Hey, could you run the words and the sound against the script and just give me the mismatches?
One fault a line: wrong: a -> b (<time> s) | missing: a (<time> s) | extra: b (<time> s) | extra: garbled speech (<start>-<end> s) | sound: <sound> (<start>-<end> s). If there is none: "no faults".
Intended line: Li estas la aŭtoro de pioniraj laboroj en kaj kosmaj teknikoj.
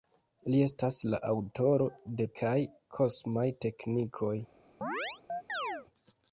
missing: pioniraj laboroj en (2.3 s)
sound: chirp (4.8-5.9 s)